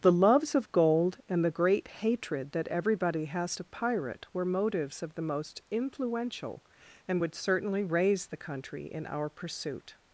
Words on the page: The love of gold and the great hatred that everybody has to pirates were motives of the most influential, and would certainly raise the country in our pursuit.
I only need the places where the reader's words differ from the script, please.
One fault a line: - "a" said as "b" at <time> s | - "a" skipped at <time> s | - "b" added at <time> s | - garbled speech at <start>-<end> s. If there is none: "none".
- "love" said as "loves" at 0.1 s
- "pirates" said as "pirate" at 3.6 s